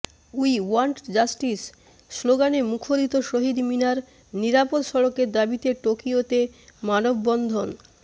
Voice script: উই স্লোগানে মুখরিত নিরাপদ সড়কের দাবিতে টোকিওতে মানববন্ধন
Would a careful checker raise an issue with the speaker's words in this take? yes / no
yes